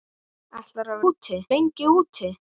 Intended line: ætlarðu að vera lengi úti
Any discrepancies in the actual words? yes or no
yes